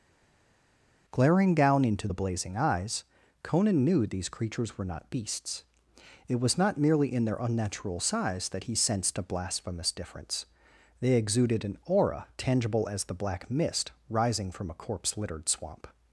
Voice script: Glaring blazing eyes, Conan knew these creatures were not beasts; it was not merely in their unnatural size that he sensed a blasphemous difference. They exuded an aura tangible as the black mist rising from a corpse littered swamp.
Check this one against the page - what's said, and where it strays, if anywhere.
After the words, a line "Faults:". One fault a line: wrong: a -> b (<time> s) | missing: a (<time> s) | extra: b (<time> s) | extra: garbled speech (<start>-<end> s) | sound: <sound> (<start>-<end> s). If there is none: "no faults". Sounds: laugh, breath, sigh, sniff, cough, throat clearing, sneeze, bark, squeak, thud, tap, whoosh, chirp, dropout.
Glaring down into the blazing eyes, Conan knew these creatures were not beasts; it was not merely in their unnatural size that he sensed a blasphemous difference. They exuded an aura tangible as the black mist rising from a corpse littered swamp.
Faults:
extra: down into the (1.6 s)